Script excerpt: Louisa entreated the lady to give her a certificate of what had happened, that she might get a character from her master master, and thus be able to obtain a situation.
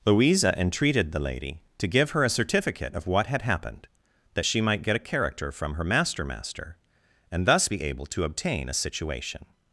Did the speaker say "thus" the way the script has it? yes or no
yes